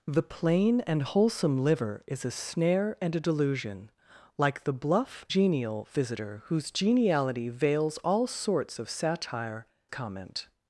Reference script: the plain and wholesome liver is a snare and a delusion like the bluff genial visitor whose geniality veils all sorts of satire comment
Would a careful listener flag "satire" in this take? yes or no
no